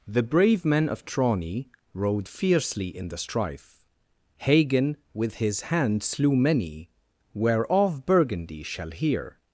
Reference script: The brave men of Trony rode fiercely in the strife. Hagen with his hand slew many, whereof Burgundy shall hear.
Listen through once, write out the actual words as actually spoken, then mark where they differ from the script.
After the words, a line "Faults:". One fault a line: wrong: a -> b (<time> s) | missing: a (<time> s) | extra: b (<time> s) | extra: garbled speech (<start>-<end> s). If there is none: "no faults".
The brave men of Trony rode fiercely in the strife. Hagen with his hand slew many, whereof Burgundy shall hear.
Faults:
no faults